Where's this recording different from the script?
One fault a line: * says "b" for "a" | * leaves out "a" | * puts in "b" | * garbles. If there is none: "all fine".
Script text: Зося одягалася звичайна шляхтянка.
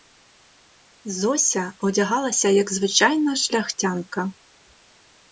* puts in "як"